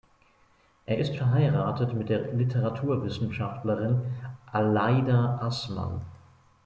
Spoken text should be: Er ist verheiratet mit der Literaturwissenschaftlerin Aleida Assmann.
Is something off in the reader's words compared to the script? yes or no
no